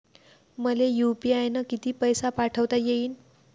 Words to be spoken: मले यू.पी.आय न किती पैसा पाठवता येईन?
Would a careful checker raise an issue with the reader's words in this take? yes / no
no